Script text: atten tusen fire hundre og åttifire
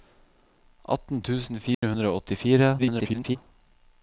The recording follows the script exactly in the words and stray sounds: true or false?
false